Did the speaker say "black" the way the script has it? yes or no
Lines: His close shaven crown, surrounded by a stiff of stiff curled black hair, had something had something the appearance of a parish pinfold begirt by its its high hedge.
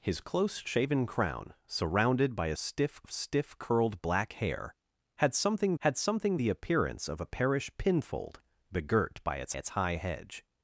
yes